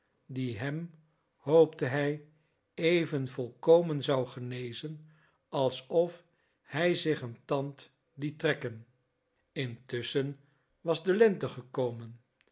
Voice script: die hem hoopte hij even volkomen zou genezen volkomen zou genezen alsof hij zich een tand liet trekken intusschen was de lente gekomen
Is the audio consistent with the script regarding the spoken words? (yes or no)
no